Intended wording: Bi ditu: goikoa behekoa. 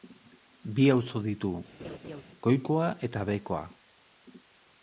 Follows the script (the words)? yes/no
no